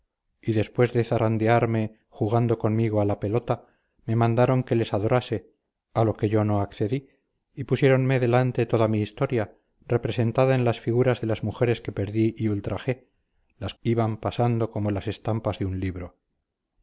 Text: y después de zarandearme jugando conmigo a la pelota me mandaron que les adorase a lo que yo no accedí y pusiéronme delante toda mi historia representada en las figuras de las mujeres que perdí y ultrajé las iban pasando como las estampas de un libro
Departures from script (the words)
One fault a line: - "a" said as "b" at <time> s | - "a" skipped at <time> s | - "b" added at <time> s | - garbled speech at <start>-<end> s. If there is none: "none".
none